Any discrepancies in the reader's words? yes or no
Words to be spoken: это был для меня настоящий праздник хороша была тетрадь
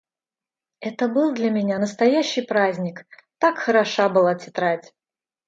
yes